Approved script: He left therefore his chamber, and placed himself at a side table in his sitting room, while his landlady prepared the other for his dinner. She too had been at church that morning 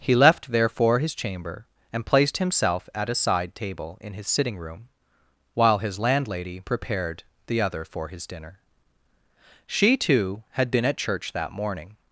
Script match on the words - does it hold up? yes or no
yes